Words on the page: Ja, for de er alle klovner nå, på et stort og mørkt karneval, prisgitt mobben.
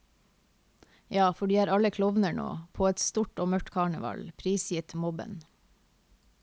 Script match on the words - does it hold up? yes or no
yes